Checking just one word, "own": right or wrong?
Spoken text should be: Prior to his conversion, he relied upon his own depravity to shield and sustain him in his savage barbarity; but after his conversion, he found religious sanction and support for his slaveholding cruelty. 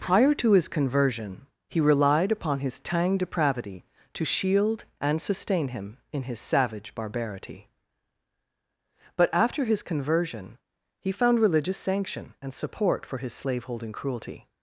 wrong